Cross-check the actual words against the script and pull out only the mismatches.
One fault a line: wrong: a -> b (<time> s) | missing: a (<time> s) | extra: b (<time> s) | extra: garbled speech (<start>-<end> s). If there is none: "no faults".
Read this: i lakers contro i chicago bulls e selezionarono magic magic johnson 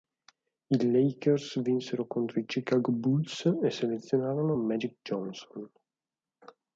extra: vinsero (1.6 s)
missing: magic (5.0 s)